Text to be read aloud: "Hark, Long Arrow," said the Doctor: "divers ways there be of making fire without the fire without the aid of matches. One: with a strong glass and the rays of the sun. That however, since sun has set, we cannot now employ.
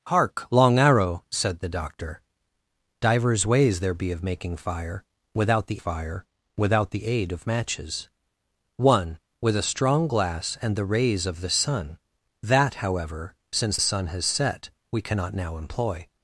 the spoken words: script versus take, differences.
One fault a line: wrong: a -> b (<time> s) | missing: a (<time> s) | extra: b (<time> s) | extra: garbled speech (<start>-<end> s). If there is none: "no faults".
no faults